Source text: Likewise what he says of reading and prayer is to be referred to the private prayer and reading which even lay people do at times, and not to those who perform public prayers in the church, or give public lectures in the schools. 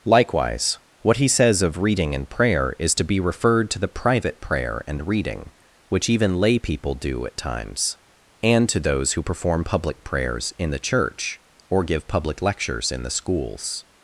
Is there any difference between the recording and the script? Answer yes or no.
yes